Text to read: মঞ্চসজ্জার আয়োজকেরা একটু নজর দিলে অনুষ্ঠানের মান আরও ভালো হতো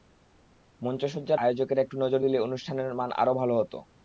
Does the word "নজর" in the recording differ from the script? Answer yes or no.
no